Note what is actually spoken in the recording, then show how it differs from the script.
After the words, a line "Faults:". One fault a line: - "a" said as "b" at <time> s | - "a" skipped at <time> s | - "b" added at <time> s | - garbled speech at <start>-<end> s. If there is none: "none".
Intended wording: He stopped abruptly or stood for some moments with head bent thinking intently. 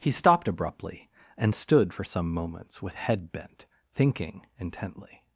He stopped abruptly and stood for some moments with head bent thinking intently.
Faults:
- "or" said as "and" at 1.4 s